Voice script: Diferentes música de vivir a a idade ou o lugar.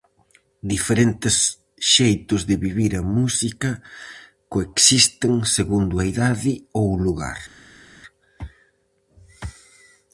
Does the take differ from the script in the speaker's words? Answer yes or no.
yes